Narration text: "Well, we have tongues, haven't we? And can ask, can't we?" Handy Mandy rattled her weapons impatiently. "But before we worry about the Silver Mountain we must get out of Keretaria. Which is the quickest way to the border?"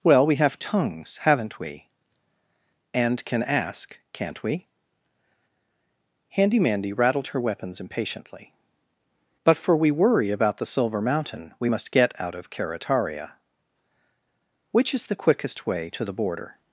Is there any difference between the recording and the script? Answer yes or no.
yes